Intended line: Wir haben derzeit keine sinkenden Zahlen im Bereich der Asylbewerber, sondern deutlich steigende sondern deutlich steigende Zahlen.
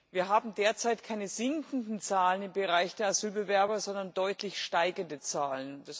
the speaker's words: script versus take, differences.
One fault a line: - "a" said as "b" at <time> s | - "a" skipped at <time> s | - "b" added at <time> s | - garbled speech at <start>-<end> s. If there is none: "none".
- "sondern deutlich steigende" skipped at 5.2 s